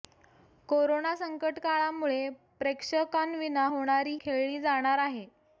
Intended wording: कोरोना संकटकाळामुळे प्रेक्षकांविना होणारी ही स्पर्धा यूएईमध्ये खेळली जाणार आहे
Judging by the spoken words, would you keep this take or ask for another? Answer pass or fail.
fail